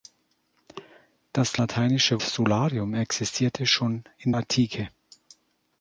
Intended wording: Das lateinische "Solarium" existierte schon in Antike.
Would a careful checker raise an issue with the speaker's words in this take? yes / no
no